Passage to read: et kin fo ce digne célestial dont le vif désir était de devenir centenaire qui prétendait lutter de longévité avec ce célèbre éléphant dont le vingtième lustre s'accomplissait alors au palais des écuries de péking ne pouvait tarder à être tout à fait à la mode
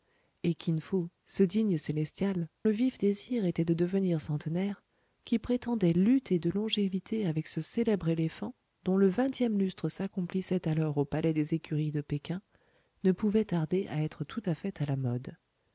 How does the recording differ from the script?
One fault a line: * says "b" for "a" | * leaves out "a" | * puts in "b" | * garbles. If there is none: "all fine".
* leaves out "dont"